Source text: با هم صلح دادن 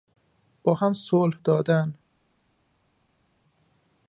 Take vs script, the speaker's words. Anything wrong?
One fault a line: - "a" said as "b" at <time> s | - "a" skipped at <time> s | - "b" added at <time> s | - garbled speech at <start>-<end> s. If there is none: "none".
none